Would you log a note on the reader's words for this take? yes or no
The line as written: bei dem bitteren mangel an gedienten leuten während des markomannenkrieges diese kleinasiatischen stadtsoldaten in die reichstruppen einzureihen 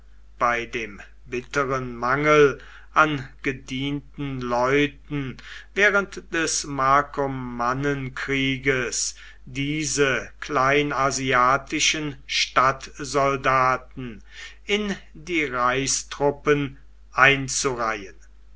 no